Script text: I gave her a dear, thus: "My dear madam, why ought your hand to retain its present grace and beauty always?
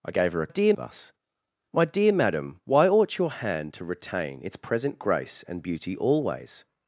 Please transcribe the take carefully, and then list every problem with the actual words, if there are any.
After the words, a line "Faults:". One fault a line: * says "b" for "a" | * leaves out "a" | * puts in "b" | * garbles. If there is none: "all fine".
I gave her a dear, thus: "My dear madam, why ought your hand to retain its present grace and beauty always?
Faults:
all fine